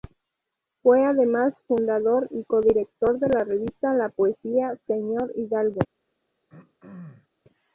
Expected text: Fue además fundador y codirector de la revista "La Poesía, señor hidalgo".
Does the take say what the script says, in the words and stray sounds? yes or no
no